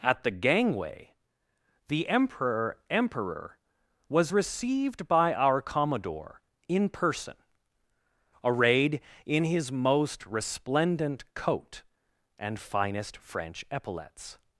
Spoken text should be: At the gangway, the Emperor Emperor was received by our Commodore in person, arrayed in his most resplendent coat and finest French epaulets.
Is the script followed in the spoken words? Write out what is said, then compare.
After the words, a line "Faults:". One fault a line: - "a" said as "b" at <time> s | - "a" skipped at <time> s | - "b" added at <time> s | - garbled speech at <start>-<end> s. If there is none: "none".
At the gangway, the Emperor Emperor was received by our Commodore in person, arrayed in his most resplendent coat and finest French epaulets.
Faults:
none